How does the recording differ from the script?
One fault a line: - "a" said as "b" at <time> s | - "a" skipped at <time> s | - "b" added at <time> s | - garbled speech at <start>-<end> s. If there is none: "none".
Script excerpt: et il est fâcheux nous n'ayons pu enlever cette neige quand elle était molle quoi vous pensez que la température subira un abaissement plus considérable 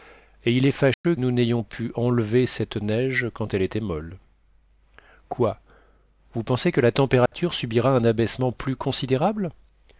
none